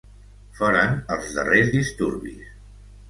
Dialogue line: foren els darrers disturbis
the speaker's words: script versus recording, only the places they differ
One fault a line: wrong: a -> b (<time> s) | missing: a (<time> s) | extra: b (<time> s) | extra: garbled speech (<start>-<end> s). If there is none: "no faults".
no faults